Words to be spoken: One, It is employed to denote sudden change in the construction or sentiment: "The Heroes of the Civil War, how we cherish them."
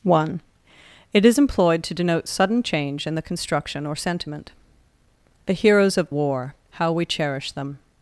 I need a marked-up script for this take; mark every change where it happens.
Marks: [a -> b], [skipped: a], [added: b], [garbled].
One, It is employed to denote sudden change in the construction or sentiment: "The Heroes of [skipped: the Civil] War, how we cherish them."